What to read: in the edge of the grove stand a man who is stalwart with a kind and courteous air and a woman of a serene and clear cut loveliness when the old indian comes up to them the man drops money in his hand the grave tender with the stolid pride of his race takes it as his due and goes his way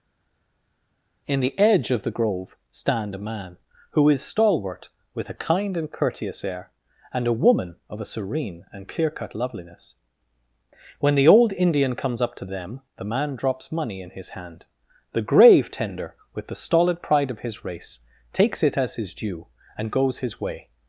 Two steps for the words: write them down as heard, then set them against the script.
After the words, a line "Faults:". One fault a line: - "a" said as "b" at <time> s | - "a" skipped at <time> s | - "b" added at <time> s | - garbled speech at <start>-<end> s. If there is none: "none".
in the edge of the grove stand a man who is stalwart with a kind and courteous air and a woman of a serene and clear cut loveliness when the old indian comes up to them the man drops money in his hand the grave tender with the stolid pride of his race takes it as his due and goes his way
Faults:
none